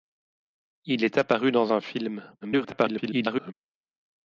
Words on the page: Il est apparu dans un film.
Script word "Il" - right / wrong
right